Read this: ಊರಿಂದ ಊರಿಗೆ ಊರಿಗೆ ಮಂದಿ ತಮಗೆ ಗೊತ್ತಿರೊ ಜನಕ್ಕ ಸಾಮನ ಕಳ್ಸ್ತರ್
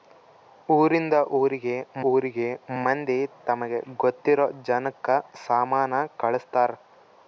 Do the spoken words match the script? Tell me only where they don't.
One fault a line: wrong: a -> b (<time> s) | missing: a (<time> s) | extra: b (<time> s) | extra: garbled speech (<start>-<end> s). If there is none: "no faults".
no faults